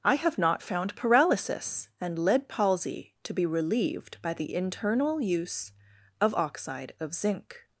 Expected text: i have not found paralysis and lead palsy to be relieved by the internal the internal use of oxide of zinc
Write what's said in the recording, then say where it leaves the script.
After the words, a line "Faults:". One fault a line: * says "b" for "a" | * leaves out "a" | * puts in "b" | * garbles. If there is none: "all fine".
i have not found paralysis and lead palsy to be relieved by the internal use of oxide of zinc
Faults:
* leaves out "the internal"